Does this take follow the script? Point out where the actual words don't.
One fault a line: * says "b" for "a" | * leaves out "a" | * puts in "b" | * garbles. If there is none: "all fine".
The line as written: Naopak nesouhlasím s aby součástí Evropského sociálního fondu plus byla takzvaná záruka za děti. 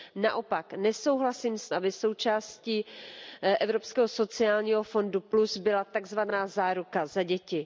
all fine